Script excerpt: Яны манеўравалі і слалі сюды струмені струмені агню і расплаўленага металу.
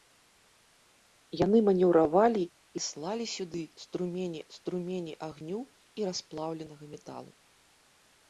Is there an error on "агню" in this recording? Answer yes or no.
no